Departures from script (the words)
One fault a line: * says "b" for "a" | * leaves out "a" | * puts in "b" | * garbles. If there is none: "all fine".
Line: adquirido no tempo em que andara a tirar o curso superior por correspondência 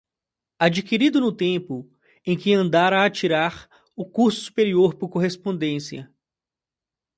all fine